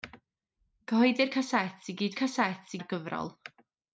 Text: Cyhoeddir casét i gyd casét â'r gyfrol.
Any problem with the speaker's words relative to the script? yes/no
no